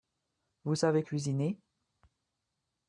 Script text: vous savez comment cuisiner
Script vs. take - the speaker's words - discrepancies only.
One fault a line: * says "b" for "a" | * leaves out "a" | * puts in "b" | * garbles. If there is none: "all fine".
* leaves out "comment"